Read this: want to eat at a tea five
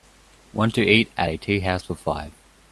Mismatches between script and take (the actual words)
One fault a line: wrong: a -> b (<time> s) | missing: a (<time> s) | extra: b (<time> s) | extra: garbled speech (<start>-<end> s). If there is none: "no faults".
extra: house for (1.6 s)